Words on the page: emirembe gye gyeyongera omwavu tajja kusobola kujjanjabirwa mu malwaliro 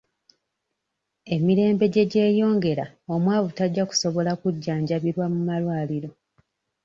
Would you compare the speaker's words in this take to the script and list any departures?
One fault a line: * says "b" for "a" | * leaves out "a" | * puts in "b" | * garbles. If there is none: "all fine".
all fine